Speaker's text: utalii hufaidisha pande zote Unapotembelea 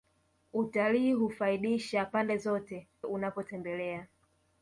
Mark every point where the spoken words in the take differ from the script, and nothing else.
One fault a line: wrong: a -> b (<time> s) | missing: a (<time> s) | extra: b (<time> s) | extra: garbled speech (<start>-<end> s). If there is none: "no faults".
no faults